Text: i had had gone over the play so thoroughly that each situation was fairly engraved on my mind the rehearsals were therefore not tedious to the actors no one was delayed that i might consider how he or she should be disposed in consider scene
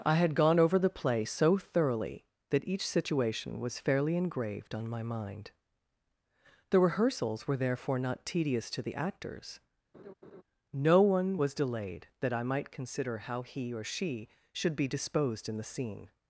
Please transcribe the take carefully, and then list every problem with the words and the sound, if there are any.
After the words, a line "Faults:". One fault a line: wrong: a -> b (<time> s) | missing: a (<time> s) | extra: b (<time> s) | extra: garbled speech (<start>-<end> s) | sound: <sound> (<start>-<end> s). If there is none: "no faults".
i had gone over the play so thoroughly that each situation was fairly engraved on my mind the rehearsals were therefore not tedious to the actors no one was delayed that i might consider how he or she should be disposed in the scene
Faults:
missing: had (0.3 s)
sound: laugh (9.9-10.4 s)
wrong: consider -> the (15.6 s)